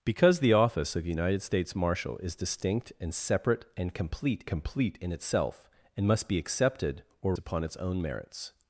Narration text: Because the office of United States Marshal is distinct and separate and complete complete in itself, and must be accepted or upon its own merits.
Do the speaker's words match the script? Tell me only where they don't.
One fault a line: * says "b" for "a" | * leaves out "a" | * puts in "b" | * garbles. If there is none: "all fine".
all fine